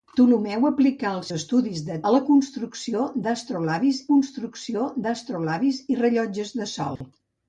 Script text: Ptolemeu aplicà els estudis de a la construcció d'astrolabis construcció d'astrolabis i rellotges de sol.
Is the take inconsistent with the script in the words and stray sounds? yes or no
yes